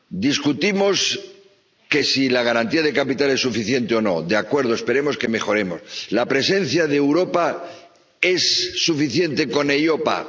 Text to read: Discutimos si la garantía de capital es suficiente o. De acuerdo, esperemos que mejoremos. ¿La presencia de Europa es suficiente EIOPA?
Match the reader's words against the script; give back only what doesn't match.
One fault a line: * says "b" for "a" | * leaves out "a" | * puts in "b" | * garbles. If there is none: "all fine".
* puts in "no"
* puts in "con"